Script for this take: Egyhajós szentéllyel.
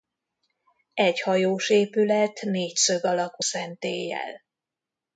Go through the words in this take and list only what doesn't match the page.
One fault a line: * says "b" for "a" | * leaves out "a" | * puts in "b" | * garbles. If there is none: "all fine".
* puts in "épület négyszög alakú"